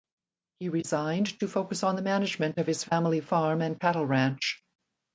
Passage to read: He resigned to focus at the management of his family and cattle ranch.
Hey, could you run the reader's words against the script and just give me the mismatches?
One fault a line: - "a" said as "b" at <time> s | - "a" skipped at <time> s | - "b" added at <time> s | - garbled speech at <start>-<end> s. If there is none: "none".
- "at" said as "on" at 1.8 s
- "farm" added at 3.2 s